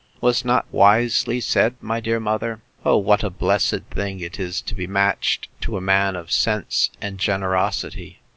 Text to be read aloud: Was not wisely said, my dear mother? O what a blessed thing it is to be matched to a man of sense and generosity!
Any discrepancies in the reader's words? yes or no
no